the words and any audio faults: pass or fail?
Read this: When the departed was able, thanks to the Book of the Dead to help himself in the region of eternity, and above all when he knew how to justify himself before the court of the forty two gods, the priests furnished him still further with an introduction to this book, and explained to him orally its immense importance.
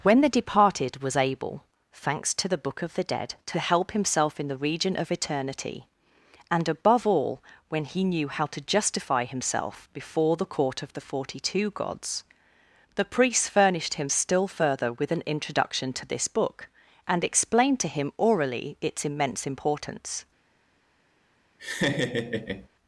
fail